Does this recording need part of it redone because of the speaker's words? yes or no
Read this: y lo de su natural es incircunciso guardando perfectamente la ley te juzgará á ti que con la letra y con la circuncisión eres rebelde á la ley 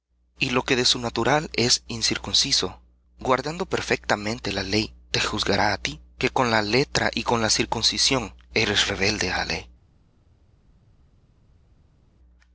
yes